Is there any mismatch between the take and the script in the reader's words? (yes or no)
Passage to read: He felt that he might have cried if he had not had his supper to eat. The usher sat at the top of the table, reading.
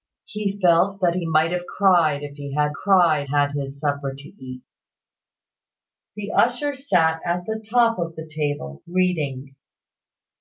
yes